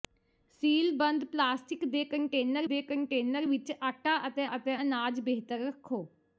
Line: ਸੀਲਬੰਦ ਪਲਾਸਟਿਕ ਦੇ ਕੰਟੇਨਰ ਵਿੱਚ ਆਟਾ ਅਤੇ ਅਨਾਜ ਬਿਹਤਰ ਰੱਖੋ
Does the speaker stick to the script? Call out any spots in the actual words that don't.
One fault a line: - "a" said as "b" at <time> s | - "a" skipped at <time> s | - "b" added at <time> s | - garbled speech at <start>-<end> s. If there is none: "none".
- "ਦੇ ਕੰਟੇਨਰ" added at 2.6 s
- "ਅਤੇ" added at 4.6 s